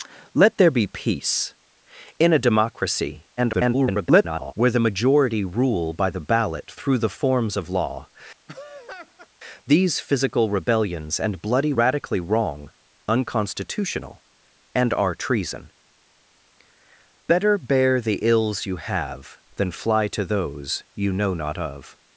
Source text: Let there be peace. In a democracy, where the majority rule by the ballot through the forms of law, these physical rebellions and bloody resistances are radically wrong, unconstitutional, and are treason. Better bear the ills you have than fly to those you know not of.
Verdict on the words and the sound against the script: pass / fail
fail